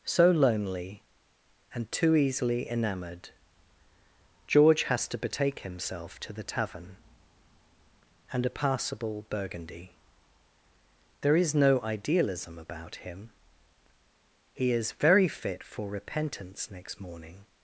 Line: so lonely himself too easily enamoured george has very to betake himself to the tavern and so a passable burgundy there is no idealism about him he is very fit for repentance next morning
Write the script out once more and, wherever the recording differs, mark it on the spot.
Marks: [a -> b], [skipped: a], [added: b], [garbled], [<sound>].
so lonely [himself -> and] too easily enamoured george has [skipped: very] to betake himself to the tavern and [skipped: so] a passable burgundy there is no idealism about him he is very fit for repentance next morning